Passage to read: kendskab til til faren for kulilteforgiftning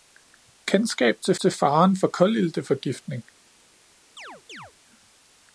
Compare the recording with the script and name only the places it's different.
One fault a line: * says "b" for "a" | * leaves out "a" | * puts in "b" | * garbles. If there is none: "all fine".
all fine